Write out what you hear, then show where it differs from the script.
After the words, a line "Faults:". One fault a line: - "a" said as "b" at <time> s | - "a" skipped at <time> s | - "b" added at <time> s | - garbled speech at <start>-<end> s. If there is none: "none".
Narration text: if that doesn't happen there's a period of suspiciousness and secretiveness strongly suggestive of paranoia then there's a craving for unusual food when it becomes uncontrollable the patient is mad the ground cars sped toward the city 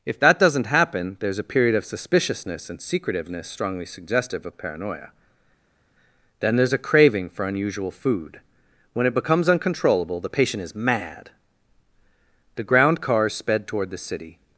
if that doesn't happen there's a period of suspiciousness and secretiveness strongly suggestive of paranoia then there's a craving for unusual food when it becomes uncontrollable the patient is mad the ground cars sped toward the city
Faults:
none